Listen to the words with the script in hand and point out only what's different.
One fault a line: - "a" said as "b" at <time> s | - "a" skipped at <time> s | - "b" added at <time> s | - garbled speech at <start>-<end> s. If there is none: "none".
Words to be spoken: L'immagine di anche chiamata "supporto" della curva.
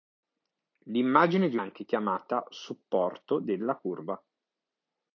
none